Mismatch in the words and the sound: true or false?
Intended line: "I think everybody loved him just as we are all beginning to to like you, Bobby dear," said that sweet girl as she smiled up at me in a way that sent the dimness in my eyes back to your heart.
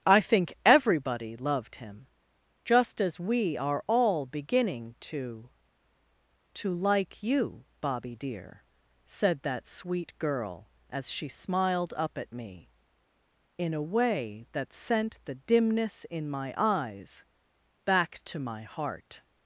true